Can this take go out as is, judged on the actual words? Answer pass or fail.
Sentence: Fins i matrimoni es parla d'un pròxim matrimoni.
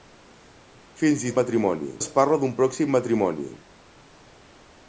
pass